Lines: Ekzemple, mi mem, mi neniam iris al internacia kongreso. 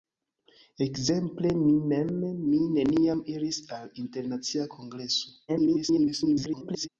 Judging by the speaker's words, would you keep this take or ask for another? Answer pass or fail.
fail